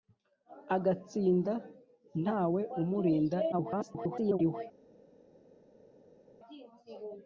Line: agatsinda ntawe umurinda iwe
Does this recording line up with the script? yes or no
no